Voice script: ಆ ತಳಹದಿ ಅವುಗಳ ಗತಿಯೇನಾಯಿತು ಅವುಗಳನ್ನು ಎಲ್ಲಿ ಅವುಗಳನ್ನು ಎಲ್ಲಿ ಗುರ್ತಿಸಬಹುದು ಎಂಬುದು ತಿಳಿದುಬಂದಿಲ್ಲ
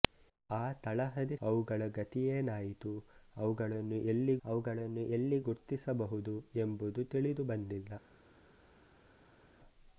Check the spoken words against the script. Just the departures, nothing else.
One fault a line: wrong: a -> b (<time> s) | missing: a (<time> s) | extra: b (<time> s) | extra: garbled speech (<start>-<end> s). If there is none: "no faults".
no faults